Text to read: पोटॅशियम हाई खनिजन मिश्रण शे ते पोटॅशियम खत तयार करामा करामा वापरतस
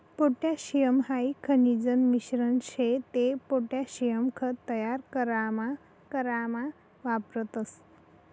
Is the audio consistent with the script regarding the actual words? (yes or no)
yes